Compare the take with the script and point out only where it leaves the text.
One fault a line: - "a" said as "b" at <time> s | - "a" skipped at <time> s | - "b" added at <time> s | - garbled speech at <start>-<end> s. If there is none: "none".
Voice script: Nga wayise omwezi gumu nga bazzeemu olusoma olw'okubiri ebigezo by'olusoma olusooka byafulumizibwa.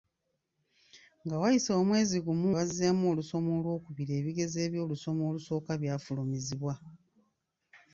- "nga" skipped at 2.5 s